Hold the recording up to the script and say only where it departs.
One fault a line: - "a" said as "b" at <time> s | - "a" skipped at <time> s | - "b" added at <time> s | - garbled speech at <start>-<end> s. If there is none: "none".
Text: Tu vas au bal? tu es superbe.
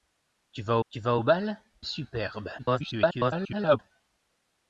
- "tu vas" added at 0.9 s
- "tu" skipped at 1.6 s
- garbled speech at 2.6-3.8 s